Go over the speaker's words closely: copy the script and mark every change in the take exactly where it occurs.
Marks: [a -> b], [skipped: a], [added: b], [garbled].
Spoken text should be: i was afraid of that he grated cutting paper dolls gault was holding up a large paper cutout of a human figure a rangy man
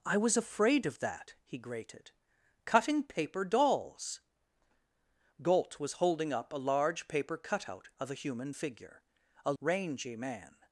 i was afraid of that he grated cutting paper dolls gault was holding up a large paper cutout of a human figure a rangy man